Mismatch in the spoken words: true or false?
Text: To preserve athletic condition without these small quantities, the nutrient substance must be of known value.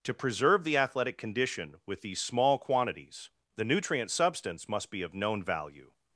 true